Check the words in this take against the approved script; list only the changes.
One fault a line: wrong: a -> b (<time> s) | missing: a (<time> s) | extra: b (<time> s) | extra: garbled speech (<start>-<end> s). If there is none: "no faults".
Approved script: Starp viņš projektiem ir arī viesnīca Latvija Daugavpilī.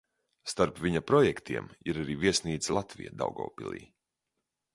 wrong: viņš -> viņa (0.8 s)